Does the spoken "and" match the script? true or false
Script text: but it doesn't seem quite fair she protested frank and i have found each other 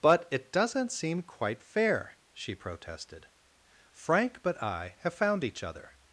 false